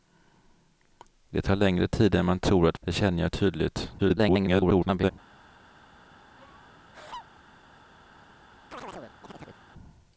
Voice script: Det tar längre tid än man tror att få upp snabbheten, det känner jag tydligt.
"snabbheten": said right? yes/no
no